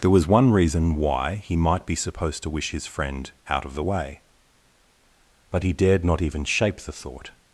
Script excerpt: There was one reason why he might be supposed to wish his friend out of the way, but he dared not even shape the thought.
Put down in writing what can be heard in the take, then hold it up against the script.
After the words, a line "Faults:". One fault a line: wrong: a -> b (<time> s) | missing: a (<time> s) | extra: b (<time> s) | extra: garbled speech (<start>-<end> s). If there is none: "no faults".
There was one reason why he might be supposed to wish his friend out of the way, but he dared not even shape the thought.
Faults:
no faults